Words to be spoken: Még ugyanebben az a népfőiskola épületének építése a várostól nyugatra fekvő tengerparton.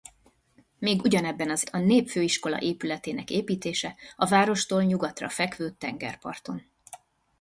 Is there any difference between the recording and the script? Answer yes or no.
no